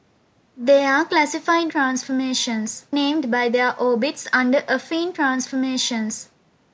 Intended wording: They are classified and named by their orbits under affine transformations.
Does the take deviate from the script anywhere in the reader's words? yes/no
yes